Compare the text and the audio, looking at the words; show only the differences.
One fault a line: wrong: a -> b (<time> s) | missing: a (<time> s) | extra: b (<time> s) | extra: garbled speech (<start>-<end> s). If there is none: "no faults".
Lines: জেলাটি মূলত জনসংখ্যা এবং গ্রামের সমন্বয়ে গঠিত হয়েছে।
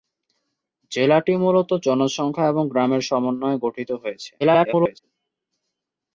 extra: garbled speech (4.4-5.0 s)